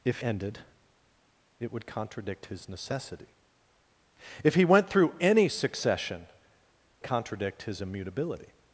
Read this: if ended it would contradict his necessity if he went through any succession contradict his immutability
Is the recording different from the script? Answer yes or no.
no